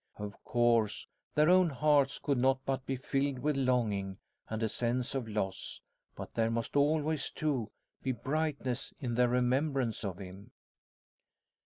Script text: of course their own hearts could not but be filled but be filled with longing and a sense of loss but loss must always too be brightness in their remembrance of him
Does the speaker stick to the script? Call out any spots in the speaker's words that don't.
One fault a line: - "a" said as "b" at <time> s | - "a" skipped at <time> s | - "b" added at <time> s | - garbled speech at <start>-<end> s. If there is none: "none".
- "but be filled" skipped at 3.4 s
- "loss" said as "there" at 6.4 s